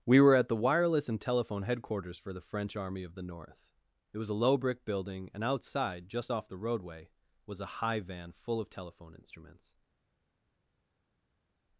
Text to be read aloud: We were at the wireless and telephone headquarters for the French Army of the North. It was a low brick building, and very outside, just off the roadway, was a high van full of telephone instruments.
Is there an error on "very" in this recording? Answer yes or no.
yes